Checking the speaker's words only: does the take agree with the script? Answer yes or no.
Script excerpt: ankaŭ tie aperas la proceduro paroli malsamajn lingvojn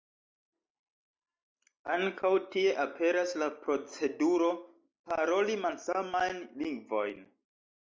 yes